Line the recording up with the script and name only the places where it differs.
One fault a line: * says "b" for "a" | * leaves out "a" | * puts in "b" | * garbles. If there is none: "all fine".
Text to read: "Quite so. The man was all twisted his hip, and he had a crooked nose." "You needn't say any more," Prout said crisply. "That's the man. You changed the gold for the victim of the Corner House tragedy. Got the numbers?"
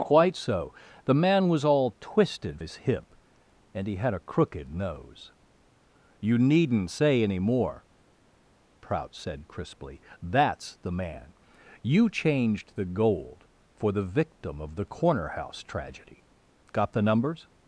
all fine